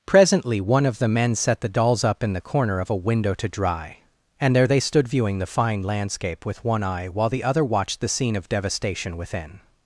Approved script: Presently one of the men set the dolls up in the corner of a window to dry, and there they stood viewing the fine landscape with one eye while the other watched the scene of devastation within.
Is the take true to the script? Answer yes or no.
yes